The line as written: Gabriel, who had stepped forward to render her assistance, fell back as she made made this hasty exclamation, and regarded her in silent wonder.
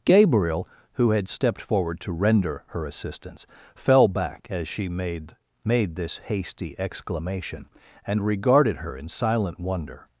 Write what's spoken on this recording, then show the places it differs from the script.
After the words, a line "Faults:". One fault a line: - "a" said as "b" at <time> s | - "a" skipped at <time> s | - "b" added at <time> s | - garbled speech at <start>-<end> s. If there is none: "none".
Gabriel, who had stepped forward to render her assistance, fell back as she made made this hasty exclamation, and regarded her in silent wonder.
Faults:
none